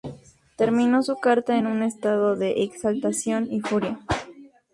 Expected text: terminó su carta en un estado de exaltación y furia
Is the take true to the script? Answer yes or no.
yes